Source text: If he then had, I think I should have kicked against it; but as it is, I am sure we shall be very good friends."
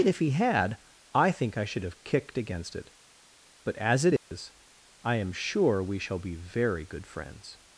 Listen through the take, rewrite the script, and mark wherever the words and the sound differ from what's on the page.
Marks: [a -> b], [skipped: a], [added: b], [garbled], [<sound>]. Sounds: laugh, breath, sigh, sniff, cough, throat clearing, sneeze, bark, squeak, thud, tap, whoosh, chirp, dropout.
If he [skipped: then] had, I think I should have kicked against it; but as it is, [dropout] I am sure we shall be very good friends."